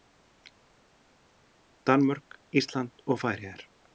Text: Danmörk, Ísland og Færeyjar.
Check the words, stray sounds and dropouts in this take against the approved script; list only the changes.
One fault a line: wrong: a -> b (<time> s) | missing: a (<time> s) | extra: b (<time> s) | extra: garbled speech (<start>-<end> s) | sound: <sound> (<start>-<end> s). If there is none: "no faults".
no faults